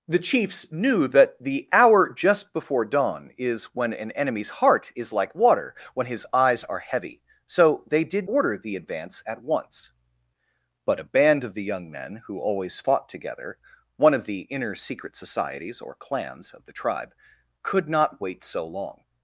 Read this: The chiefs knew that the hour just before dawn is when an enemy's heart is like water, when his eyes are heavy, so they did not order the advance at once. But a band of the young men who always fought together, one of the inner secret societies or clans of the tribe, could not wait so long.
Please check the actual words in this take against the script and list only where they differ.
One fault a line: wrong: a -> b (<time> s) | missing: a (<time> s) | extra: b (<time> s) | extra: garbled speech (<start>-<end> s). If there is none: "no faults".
missing: not (8.3 s)